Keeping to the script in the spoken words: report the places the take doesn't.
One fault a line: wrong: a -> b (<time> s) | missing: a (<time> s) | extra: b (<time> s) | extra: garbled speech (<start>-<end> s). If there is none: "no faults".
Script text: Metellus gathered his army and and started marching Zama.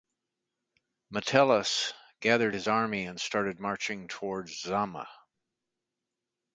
missing: and (3.2 s)
extra: towards (4.1 s)